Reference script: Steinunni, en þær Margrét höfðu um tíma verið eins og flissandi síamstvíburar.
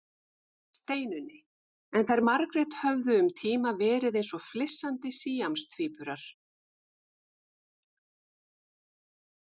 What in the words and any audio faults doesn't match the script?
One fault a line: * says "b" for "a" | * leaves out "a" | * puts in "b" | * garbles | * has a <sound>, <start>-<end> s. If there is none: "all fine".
all fine